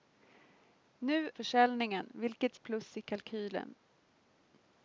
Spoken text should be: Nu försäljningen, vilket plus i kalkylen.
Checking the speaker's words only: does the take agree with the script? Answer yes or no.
yes